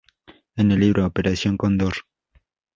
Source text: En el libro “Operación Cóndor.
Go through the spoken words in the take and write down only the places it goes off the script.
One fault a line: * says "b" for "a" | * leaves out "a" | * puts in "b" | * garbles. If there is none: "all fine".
all fine